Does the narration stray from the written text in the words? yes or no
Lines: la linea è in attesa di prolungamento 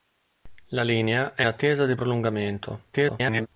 yes